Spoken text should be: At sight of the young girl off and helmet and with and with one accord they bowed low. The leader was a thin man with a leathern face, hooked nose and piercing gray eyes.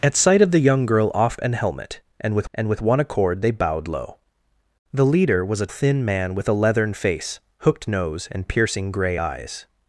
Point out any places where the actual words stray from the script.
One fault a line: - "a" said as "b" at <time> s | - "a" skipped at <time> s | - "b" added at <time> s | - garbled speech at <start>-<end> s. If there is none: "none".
none